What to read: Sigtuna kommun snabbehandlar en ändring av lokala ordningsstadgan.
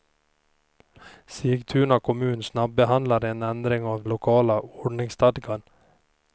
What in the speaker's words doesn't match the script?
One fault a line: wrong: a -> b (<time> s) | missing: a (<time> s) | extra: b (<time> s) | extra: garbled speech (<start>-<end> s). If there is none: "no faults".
no faults